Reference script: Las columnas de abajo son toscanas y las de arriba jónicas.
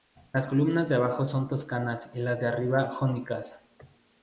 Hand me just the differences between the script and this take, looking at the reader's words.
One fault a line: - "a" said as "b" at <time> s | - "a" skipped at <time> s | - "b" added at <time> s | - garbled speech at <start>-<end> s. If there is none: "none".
none